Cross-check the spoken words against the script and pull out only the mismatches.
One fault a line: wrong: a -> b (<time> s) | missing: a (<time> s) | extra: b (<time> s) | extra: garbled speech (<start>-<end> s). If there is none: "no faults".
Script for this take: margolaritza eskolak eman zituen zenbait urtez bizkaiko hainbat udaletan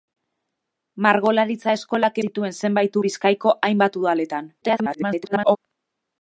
missing: eman (2.2 s)
missing: urtez (3.0 s)
extra: garbled speech (4.6-5.6 s)